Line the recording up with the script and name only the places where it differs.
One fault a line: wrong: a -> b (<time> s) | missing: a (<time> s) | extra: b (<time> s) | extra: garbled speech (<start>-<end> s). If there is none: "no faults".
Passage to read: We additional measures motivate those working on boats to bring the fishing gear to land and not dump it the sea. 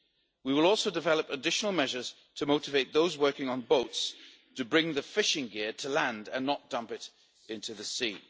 extra: will also develop (0.5 s)
extra: to (2.4 s)
extra: into (7.5 s)